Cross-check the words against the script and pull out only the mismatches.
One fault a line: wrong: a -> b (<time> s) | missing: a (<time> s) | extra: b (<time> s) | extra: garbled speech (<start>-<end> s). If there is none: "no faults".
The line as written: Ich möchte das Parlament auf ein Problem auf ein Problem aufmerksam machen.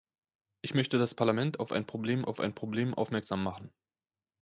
no faults